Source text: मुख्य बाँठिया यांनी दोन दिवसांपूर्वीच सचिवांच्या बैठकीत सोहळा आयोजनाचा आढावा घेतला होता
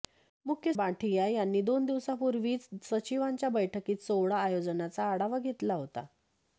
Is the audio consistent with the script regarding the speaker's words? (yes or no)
yes